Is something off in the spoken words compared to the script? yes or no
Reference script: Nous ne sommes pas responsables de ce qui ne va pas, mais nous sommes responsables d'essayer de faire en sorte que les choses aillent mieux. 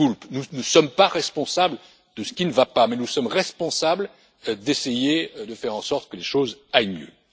no